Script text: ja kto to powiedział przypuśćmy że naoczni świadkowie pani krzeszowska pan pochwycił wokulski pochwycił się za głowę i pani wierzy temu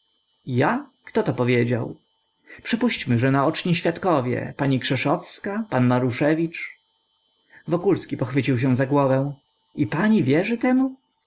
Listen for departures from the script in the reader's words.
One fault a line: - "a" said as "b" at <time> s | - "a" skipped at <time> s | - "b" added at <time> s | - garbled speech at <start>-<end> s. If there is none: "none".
- "pochwycił" said as "maruszewicz" at 5.9 s